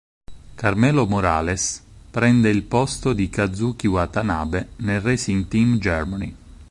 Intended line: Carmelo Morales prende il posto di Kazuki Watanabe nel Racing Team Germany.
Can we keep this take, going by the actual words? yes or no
yes